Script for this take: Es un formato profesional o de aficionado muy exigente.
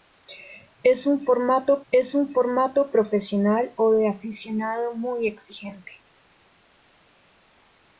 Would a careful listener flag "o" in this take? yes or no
no